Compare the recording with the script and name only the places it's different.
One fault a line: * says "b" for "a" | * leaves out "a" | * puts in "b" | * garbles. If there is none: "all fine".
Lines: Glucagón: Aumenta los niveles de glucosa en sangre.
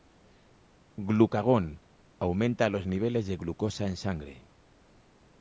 all fine